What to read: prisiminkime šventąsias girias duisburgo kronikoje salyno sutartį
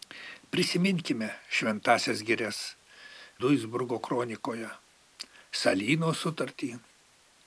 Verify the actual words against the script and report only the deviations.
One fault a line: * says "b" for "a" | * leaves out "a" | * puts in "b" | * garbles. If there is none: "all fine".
all fine